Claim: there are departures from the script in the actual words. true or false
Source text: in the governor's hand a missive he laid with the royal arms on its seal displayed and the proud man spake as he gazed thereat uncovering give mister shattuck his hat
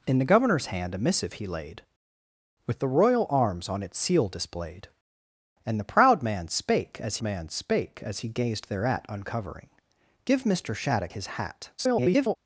true